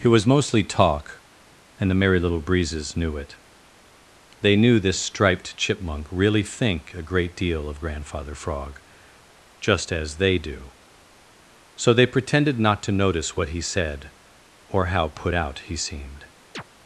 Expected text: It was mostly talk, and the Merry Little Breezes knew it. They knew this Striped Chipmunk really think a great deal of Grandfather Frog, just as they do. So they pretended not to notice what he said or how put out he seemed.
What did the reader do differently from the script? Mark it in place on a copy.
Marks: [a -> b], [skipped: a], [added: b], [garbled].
It was mostly talk, and the Merry Little Breezes knew it. They knew this Striped Chipmunk really think a great deal of Grandfather Frog, just as they do. So they pretended not to notice what he said or how put out he seemed.